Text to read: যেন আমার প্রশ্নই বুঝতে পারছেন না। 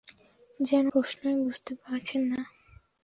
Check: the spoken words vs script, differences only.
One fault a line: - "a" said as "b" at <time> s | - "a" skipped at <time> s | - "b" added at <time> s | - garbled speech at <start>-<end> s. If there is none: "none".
- "আমার" skipped at 0.8 s